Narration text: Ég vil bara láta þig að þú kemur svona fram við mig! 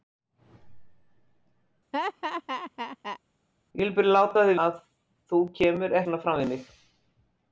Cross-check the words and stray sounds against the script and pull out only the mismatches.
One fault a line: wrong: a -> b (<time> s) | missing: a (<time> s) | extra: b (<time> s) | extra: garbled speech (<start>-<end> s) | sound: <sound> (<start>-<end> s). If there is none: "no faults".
sound: laugh (1.9-3.2 s)